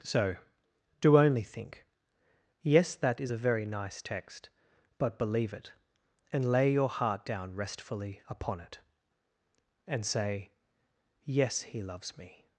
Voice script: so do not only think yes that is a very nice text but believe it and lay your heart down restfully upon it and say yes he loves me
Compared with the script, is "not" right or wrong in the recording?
wrong